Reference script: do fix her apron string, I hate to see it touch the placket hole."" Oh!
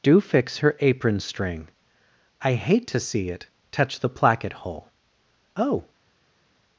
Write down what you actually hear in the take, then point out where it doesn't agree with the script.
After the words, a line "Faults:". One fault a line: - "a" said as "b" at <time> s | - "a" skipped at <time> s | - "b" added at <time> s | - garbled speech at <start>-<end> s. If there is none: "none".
do fix her apron string, I hate to see it touch the placket hole."" Oh!
Faults:
none